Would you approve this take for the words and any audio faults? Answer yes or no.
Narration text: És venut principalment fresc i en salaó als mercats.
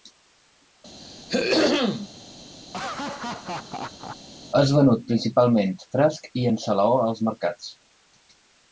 no